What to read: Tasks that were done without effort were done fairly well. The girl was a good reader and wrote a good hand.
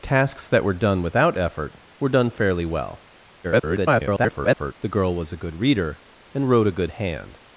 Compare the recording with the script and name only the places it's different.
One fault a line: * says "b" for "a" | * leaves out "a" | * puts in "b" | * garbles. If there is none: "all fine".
* garbles